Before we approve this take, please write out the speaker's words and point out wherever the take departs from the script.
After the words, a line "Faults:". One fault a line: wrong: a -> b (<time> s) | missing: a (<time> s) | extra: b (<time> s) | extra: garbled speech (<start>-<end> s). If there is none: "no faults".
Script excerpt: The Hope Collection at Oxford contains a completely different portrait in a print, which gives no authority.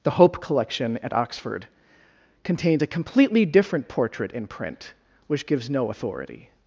The Hope Collection at Oxford contains a completely different portrait in print, which gives no authority.
Faults:
missing: a (4.5 s)